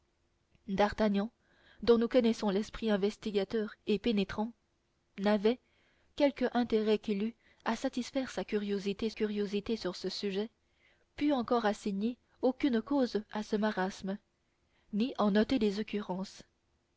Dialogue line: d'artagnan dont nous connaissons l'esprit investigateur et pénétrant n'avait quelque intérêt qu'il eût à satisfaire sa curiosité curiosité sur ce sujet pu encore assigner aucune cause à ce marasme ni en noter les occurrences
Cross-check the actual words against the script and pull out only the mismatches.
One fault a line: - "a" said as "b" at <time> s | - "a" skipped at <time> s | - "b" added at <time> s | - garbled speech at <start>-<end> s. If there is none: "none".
none